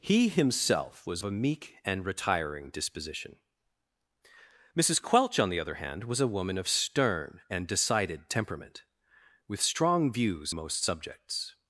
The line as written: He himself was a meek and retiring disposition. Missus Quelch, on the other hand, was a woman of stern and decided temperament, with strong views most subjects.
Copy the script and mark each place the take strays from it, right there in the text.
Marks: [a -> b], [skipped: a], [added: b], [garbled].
He himself was a meek and retiring disposition. Missus Quelch, on the other hand, was a woman of stern and decided temperament, with strong views most subjects.